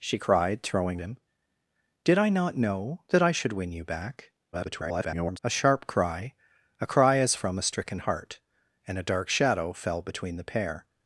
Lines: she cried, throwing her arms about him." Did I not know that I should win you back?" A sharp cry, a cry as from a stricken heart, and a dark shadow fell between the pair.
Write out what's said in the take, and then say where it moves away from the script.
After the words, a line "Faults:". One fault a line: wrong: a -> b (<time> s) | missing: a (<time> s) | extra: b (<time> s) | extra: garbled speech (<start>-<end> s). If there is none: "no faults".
she cried, throwing him." Did I not know that I should win you back?" [garbled] A sharp cry, a cry as from a stricken heart, and a dark shadow fell between the pair.
Faults:
missing: her arms about (1.0 s)
extra: garbled speech (4.5-5.4 s)